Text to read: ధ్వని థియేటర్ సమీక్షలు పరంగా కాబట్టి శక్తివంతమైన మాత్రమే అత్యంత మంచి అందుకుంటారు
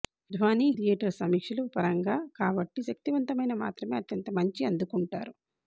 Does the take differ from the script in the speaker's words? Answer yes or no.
no